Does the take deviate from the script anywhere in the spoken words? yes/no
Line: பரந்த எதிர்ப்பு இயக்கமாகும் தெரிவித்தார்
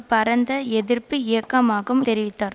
no